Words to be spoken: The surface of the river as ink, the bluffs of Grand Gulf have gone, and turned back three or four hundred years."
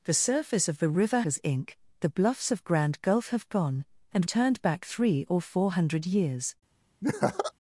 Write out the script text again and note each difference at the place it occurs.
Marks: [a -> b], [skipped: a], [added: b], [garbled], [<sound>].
The surface of the river as ink, the bluffs of Grand Gulf have gone, and turned back three or four hundred years." [laugh]